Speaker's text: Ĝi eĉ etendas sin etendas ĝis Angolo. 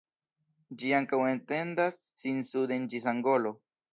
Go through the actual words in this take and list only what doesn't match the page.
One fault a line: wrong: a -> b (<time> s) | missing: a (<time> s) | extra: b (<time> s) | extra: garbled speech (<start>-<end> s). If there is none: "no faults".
wrong: eĉ -> ankaŭ (1.0 s)
wrong: etendas -> suden (2.5 s)